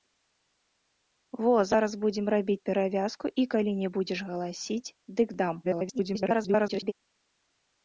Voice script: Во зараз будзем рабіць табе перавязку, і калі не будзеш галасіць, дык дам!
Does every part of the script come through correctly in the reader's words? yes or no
no